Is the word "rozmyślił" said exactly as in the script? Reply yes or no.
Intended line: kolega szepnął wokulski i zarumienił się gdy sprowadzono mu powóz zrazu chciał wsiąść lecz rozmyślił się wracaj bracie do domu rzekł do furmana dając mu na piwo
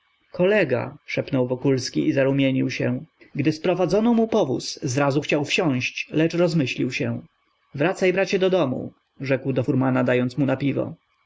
yes